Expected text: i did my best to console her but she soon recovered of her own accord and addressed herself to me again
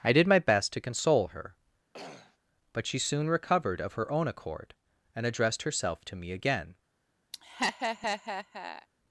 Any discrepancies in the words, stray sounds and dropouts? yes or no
yes